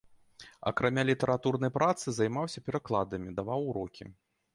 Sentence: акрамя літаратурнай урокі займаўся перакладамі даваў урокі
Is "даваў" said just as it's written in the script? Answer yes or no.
yes